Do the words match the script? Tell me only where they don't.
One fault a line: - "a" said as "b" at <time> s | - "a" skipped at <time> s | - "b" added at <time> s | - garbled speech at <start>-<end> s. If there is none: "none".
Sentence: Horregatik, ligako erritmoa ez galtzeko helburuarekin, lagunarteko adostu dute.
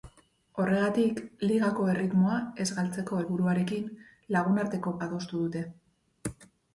none